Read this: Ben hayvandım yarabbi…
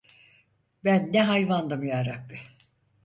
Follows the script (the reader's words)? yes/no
no